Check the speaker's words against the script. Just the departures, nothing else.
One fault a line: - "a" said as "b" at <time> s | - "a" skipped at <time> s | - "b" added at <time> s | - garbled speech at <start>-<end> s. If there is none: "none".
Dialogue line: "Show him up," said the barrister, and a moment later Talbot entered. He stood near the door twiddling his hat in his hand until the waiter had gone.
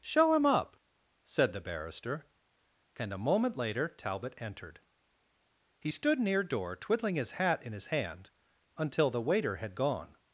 - "the" skipped at 6.4 s